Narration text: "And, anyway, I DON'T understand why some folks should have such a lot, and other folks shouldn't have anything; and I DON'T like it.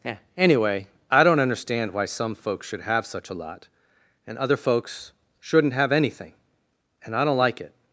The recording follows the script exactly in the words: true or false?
false